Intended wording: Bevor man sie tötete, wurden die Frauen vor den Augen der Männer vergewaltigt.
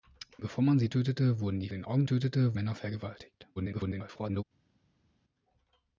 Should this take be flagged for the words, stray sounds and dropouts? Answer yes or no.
yes